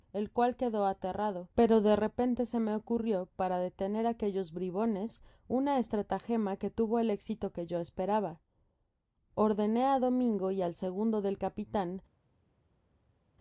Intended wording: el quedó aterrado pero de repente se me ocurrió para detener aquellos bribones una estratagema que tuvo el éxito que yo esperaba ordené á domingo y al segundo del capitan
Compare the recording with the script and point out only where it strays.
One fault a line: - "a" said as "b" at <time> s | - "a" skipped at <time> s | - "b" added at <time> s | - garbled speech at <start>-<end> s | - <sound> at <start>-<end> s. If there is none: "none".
- "cual" added at 0.3 s